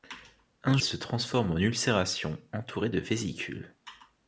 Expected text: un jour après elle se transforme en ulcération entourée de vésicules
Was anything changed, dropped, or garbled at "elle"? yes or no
yes